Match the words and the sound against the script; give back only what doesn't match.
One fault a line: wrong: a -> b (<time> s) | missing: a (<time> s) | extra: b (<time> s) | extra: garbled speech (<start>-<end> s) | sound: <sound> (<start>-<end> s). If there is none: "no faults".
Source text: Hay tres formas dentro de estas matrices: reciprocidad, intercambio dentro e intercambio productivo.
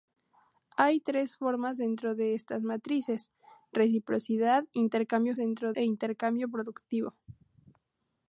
no faults